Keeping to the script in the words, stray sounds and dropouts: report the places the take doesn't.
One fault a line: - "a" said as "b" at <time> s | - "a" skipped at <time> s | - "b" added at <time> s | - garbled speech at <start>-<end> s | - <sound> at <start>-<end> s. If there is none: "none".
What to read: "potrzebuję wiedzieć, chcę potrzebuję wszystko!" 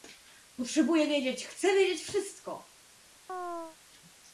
- "potrzebuję" said as "wiedzieć" at 1.7 s
- chirp at 3.3-3.8 s